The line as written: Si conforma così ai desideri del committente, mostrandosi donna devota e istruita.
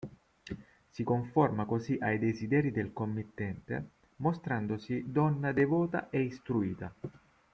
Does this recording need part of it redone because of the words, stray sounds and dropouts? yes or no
no